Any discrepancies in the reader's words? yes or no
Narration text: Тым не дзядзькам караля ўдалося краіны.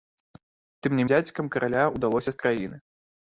no